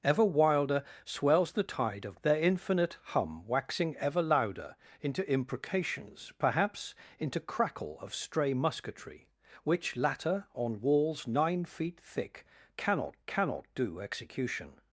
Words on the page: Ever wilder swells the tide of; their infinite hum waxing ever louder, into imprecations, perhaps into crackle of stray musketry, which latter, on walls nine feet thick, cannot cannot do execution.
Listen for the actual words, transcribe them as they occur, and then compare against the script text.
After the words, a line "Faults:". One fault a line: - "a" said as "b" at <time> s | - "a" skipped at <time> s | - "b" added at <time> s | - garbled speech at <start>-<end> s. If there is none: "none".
Ever wilder swells the tide of; their infinite hum waxing ever louder, into imprecations, perhaps into crackle of stray musketry, which latter, on walls nine feet thick, cannot cannot do execution.
Faults:
none